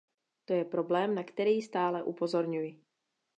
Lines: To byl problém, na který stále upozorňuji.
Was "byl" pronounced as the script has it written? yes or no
no